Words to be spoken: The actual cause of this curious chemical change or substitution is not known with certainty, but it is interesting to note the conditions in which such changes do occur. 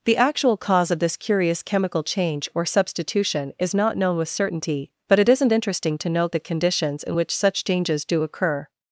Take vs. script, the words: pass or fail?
fail